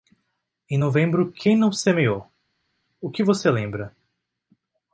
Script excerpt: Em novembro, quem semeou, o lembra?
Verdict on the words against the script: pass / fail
fail